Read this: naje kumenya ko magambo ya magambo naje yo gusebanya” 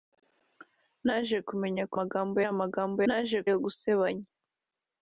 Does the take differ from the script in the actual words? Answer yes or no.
no